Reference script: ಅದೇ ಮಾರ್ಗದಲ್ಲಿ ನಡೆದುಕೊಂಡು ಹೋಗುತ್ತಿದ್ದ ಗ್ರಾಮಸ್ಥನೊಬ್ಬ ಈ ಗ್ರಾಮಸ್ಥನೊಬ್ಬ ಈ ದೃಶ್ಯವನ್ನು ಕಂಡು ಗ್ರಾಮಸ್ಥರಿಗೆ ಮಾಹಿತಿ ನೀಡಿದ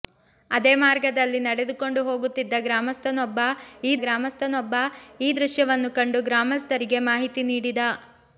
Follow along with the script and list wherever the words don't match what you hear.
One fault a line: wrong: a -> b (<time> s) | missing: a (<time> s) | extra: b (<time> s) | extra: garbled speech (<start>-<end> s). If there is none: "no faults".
no faults